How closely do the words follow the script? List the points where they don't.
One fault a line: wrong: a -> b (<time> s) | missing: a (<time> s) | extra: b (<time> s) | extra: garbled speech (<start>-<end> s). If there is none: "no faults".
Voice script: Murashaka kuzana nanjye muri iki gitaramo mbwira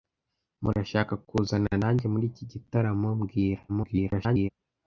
extra: garbled speech (3.7-4.5 s)